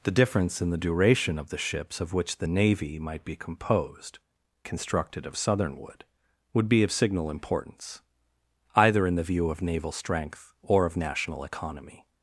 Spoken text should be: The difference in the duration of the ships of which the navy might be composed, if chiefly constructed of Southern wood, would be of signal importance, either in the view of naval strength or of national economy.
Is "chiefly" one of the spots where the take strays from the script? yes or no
yes